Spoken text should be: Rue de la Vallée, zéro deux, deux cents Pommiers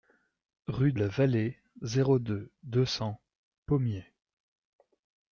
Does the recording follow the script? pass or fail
fail